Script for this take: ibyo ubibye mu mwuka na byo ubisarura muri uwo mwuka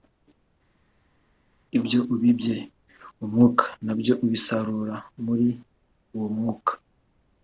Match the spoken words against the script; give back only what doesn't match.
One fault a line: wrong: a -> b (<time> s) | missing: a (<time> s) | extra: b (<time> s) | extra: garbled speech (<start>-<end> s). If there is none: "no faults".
no faults